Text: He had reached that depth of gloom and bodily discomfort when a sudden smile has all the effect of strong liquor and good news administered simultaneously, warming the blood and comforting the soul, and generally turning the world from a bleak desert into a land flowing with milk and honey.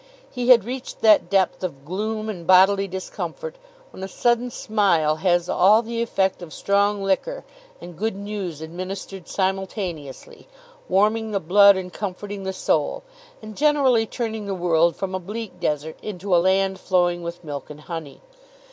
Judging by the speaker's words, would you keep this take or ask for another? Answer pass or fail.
pass